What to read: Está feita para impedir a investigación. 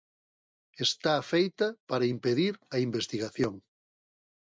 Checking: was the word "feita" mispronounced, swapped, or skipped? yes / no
no